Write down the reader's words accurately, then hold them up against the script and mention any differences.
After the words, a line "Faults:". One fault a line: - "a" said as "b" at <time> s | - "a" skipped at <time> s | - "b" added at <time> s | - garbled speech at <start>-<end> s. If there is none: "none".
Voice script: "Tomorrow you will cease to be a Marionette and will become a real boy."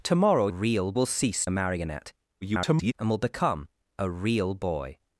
"Tomorrow real will cease a Marionette [garbled] and will become a real boy."
Faults:
- "you" said as "real" at 0.5 s
- "to be" skipped at 1.5 s
- garbled speech at 2.4-2.9 s